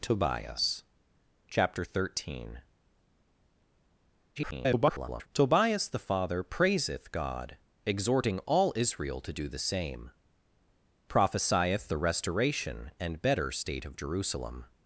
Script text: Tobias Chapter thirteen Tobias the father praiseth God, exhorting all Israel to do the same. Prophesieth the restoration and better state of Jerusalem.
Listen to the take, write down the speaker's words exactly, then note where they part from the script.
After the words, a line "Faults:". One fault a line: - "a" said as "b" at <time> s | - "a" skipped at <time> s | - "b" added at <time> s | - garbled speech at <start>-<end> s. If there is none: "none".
Tobias Chapter thirteen [garbled] Tobias the father praiseth God, exhorting all Israel to do the same. Prophesieth the restoration and better state of Jerusalem.
Faults:
- garbled speech at 4.4-5.3 s